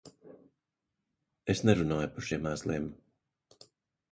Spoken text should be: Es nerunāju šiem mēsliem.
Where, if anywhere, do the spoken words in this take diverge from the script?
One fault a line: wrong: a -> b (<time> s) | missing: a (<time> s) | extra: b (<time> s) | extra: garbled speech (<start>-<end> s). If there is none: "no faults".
extra: par (2.1 s)